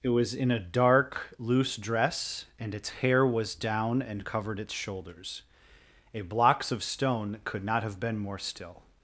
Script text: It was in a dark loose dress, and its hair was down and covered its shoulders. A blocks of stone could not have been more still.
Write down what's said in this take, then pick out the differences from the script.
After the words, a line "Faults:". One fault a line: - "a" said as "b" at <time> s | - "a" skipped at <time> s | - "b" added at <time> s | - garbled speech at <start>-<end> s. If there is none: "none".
It was in a dark loose dress, and its hair was down and covered its shoulders. A blocks of stone could not have been more still.
Faults:
none